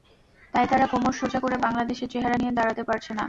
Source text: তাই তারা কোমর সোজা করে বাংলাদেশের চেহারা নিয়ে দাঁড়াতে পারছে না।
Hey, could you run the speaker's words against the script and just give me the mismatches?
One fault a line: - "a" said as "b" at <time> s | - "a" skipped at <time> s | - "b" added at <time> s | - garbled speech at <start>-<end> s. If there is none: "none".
none